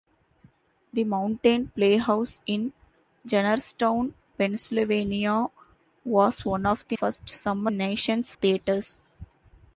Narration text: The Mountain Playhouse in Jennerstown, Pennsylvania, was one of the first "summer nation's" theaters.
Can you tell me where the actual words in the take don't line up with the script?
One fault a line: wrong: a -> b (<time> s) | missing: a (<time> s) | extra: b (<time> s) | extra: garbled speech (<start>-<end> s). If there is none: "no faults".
no faults